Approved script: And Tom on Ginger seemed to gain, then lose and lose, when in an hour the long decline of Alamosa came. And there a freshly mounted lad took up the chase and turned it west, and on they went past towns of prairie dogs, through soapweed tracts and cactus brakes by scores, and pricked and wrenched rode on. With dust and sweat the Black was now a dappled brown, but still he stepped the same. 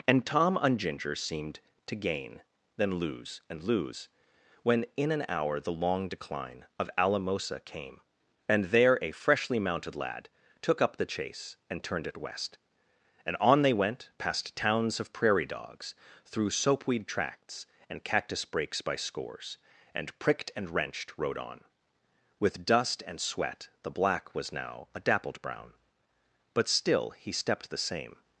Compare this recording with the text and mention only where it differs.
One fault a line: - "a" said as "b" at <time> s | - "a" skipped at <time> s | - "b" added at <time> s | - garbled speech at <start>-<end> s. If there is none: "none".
none